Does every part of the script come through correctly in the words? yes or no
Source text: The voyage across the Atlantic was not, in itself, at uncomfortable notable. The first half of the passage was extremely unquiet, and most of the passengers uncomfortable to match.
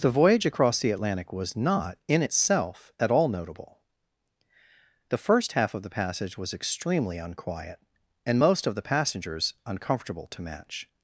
no